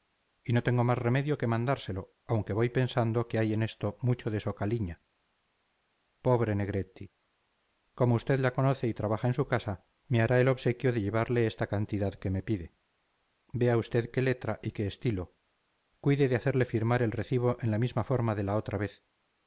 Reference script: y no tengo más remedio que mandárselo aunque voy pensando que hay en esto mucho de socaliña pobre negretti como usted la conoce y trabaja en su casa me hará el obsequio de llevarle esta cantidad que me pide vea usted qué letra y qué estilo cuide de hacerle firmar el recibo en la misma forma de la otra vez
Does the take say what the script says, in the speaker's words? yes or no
yes